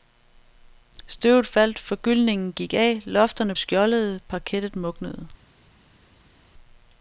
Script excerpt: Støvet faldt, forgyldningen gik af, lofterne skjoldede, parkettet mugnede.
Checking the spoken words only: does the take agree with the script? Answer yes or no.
yes